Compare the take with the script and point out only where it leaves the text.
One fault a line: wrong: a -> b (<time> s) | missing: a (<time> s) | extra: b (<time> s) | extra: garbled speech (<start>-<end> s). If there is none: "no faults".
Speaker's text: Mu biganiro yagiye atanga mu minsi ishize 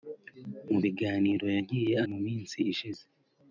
missing: atanga (1.9 s)